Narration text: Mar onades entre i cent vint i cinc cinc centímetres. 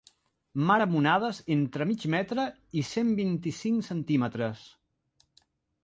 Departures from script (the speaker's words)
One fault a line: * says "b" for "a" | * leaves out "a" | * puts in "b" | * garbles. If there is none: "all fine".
* puts in "amb"
* puts in "mig metre"
* leaves out "cinc"